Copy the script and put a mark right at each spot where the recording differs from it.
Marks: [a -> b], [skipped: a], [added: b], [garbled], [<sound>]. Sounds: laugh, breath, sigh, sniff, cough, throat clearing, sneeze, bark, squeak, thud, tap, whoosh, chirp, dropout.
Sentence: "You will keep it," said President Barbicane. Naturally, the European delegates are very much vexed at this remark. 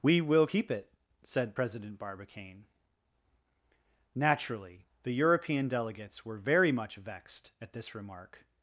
["You -> We] will keep it," said President Barbicane. Naturally, the European delegates [are -> were] very much vexed at this remark.